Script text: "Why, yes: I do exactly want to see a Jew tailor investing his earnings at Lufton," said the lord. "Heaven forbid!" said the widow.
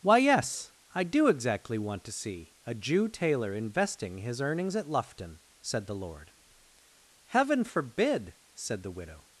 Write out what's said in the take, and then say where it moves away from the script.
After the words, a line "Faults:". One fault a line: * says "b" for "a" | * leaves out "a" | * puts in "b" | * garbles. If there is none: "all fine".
"Why, yes: I do exactly want to see a Jew tailor investing his earnings at Lufton," said the lord. "Heaven forbid!" said the widow.
Faults:
all fine